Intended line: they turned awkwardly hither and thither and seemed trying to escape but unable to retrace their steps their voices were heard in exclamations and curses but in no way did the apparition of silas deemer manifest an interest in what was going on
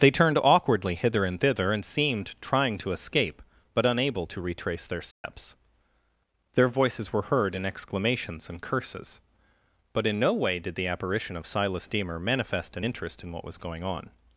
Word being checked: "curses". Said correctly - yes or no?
yes